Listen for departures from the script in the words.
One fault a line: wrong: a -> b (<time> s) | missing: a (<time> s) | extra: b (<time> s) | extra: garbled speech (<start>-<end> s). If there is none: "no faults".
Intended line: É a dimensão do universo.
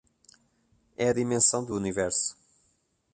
no faults